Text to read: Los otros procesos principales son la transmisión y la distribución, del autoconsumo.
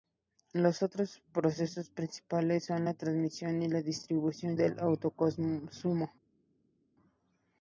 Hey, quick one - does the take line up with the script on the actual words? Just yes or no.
yes